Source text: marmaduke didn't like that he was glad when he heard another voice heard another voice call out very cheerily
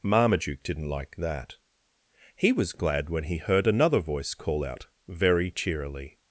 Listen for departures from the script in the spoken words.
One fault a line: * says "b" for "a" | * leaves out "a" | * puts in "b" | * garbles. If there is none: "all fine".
* leaves out "heard another voice"